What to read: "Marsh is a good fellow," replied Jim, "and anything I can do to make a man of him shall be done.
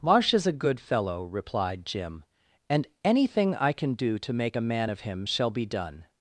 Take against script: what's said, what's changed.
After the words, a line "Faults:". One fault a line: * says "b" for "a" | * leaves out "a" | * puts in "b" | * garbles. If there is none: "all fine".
"Marsh is a good fellow," replied Jim, "and anything I can do to make a man of him shall be done.
Faults:
all fine